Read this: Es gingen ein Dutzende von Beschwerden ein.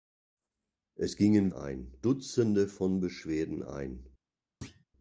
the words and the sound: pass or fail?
fail